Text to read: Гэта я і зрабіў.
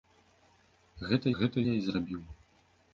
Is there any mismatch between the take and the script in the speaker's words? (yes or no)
yes